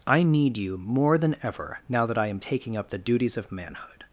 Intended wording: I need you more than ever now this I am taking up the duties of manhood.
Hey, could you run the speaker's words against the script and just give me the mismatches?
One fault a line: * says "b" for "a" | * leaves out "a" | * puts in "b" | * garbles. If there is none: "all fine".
* says "that" for "this"